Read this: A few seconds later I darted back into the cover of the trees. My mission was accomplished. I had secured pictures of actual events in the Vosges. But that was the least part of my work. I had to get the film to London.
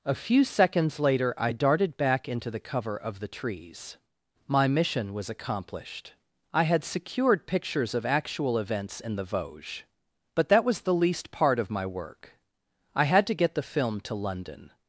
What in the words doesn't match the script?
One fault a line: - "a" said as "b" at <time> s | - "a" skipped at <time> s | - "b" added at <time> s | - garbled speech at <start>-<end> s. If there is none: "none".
none